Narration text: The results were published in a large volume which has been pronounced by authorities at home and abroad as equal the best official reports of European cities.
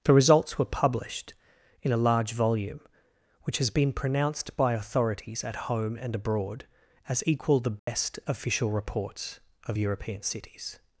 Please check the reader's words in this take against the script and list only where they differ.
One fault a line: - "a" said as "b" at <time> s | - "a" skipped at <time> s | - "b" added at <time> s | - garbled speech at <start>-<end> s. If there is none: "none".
none